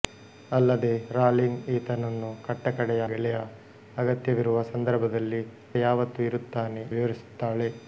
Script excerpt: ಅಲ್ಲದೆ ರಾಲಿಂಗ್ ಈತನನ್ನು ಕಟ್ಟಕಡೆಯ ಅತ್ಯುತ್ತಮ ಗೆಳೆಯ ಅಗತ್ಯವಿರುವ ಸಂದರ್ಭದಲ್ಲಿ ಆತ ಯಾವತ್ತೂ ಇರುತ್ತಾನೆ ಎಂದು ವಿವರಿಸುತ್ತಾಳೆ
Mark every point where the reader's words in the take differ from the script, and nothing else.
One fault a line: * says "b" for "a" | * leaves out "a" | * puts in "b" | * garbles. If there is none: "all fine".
* leaves out "ಅತ್ಯುತ್ತಮ"
* leaves out "ಆತ"
* leaves out "ಎಂದು"